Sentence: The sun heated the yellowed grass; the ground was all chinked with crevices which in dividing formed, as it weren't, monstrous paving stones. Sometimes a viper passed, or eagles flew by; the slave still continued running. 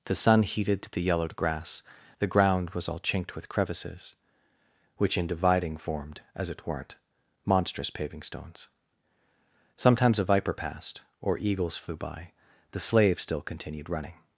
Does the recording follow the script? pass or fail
pass